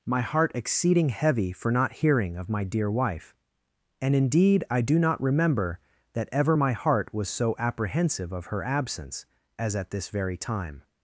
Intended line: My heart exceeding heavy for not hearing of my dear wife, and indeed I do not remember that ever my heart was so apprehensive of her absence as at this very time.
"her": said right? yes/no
yes